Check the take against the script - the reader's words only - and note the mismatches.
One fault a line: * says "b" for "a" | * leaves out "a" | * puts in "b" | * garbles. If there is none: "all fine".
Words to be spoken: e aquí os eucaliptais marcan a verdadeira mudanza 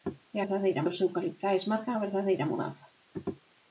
* says "verdadeira" for "aquí"